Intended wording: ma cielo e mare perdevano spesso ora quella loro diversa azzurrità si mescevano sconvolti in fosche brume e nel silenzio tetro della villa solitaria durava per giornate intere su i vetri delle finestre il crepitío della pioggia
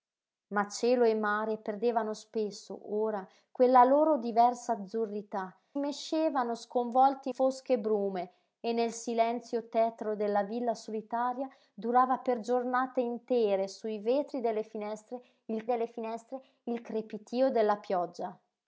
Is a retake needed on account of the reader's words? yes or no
yes